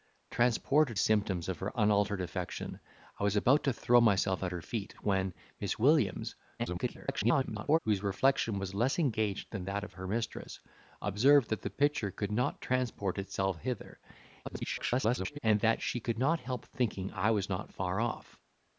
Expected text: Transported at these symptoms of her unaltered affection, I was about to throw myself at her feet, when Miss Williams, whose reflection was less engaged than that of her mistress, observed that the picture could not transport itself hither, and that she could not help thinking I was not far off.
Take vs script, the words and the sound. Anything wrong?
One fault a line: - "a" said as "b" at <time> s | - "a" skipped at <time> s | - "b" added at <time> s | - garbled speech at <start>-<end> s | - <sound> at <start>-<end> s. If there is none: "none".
- "at these" skipped at 1.0 s
- garbled speech at 6.6-7.8 s
- garbled speech at 14.4-15.4 s